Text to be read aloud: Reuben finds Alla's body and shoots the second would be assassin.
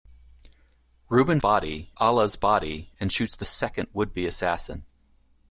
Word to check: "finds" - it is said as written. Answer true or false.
false